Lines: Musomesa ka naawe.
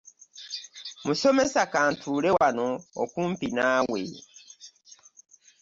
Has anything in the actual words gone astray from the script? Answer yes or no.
yes